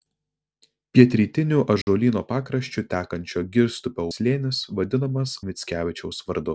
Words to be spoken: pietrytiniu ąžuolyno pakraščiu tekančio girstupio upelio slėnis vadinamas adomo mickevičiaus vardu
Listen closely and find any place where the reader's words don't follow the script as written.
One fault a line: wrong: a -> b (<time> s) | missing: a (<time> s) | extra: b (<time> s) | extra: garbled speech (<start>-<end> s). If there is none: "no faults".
missing: upelio (4.0 s)
missing: adomo (5.3 s)